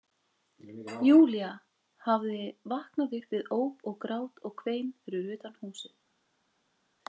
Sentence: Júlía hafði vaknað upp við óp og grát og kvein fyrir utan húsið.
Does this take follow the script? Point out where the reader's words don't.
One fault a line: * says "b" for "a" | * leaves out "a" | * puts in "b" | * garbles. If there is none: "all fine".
all fine